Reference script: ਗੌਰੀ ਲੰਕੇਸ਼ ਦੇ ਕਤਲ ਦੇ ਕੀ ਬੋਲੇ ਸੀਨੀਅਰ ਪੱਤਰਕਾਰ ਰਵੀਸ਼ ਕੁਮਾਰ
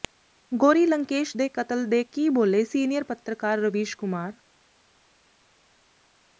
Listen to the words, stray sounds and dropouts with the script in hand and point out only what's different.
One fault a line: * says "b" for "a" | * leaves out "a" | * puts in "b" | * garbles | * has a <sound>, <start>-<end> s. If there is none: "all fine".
all fine